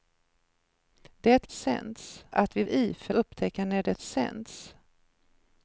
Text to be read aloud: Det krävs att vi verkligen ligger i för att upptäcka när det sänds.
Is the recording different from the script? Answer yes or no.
yes